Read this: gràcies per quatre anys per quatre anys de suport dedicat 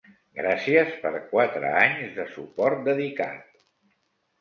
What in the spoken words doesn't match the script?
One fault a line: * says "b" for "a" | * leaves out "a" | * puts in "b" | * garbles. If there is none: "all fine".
* leaves out "per quatre anys"